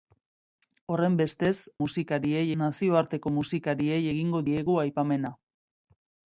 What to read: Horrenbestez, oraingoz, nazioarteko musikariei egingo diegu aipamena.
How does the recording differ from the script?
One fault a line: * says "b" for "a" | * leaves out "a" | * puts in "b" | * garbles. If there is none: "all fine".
* says "musikariei" for "oraingoz"